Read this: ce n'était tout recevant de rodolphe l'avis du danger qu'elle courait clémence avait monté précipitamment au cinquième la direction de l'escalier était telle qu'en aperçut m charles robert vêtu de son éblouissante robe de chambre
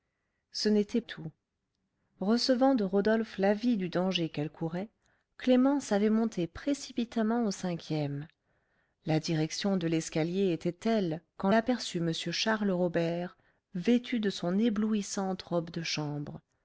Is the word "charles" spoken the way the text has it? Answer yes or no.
yes